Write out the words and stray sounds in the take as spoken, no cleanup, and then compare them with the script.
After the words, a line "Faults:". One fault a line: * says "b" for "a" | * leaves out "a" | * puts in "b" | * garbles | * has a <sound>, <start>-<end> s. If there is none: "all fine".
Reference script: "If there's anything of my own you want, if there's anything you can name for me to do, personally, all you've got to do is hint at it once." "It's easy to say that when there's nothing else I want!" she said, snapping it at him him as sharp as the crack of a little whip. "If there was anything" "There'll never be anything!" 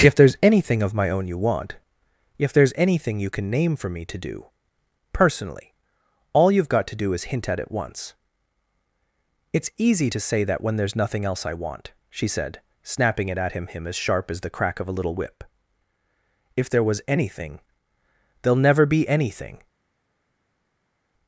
"If there's anything of my own you want, if there's anything you can name for me to do, personally, all you've got to do is hint at it once." "It's easy to say that when there's nothing else I want!" she said, snapping it at him him as sharp as the crack of a little whip. "If there was anything" "There'll never be anything!"
Faults:
all fine